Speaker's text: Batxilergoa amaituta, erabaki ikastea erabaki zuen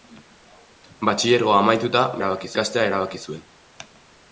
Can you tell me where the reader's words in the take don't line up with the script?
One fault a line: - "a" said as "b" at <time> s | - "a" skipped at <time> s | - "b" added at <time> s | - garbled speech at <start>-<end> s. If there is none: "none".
none